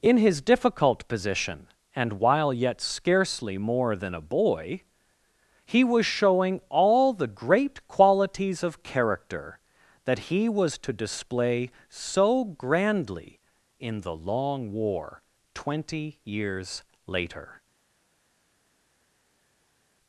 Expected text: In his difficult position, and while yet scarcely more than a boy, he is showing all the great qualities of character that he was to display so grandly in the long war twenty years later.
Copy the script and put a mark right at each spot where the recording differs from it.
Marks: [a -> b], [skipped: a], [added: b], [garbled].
In his difficult position, and while yet scarcely more than a boy, he [is -> was] showing all the great qualities of character that he was to display so grandly in the long war twenty years later.